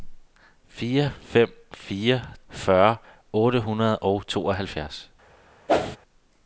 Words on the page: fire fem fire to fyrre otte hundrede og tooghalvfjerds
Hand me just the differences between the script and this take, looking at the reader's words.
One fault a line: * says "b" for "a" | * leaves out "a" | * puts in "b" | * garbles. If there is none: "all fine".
* leaves out "to"